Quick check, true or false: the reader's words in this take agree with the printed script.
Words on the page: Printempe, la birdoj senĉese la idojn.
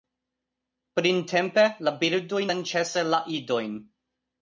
true